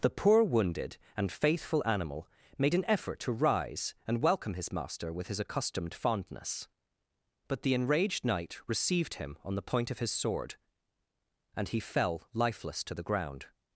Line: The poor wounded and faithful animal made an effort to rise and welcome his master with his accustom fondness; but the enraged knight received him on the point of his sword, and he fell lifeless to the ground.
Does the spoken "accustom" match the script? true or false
false